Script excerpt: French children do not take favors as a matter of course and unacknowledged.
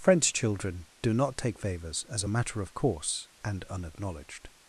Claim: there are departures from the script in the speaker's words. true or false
false